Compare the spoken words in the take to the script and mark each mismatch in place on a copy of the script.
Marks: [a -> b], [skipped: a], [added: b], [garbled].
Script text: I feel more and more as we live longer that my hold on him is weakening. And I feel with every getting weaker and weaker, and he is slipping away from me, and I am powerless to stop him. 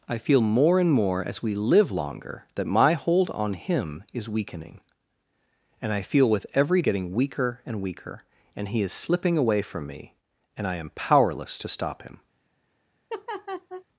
I feel more and more as we live longer that my hold on him is weakening. And I feel with every getting weaker and weaker, and he is slipping away from me, and I am powerless to stop him.